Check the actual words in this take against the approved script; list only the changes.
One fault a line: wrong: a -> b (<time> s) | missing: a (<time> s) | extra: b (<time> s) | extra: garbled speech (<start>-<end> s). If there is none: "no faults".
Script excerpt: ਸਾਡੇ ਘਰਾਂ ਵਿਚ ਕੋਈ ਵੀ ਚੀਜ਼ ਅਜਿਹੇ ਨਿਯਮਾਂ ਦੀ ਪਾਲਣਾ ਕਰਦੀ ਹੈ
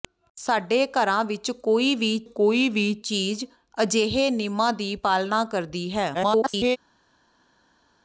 extra: ਕੋਈ ਵੀ (2.2 s)
extra: garbled speech (6.1-6.8 s)